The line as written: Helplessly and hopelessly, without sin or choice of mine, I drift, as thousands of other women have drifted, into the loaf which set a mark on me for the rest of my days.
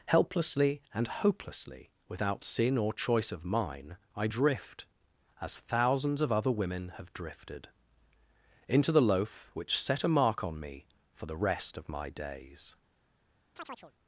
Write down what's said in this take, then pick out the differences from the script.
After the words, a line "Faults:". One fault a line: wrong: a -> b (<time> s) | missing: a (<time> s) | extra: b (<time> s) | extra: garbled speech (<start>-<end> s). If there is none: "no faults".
Helplessly and hopelessly, without sin or choice of mine, I drift, as thousands of other women have drifted, into the loaf which set a mark on me for the rest of my days.
Faults:
no faults